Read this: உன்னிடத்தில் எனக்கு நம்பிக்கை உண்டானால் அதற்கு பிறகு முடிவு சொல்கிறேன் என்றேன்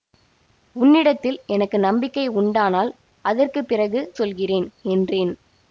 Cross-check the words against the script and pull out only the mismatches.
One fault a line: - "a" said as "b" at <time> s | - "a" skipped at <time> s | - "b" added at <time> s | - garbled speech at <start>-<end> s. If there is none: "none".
- "முடிவு" skipped at 4.0 s